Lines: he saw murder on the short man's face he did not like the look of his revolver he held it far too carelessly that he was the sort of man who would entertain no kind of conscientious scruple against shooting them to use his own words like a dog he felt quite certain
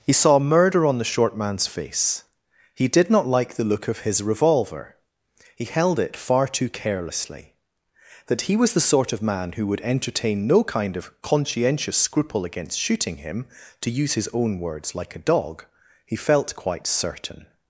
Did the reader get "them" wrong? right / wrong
wrong